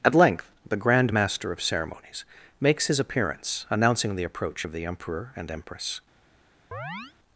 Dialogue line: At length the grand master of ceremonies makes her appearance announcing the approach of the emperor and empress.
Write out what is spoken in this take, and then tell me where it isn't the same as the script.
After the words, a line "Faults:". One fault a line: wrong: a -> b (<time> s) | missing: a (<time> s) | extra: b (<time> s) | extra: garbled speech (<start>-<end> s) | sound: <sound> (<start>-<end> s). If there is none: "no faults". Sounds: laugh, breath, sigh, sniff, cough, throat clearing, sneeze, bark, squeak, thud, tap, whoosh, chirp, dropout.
At length the grand master of ceremonies makes his appearance announcing the approach of the emperor and empress.
Faults:
wrong: her -> his (2.9 s)
sound: chirp (6.7-7.1 s)